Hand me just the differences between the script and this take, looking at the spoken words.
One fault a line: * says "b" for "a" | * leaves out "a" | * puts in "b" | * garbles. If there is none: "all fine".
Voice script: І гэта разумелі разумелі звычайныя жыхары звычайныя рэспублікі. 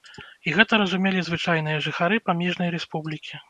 * leaves out "разумелі"
* says "памежнай" for "звычайныя"